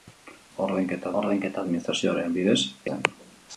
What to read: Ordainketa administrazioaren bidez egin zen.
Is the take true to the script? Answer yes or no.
no